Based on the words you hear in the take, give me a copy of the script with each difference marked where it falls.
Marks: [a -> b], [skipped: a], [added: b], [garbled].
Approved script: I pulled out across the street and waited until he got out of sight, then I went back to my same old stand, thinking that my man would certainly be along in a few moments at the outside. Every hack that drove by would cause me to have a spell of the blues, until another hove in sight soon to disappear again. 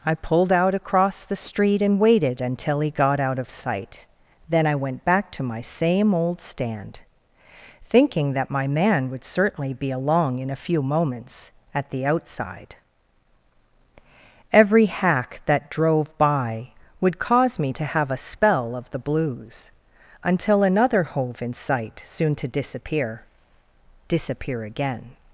I pulled out across the street and waited until he got out of sight, then I went back to my same old stand, thinking that my man would certainly be along in a few moments at the outside. Every hack that drove by would cause me to have a spell of the blues, until another hove in sight soon to disappear [added: disappear] again.